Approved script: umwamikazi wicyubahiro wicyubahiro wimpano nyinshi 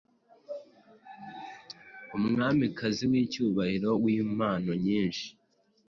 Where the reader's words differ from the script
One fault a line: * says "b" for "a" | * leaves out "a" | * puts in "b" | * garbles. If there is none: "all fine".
* leaves out "wicyubahiro"